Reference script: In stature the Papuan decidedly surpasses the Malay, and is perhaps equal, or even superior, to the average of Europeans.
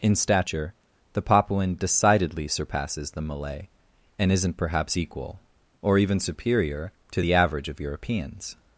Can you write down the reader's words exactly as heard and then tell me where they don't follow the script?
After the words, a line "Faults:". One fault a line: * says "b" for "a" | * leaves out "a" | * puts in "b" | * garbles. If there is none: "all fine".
In stature the Papuan decidedly surpasses the Malay, and isn't perhaps equal, or even superior, to the average of Europeans.
Faults:
* says "isn't" for "is"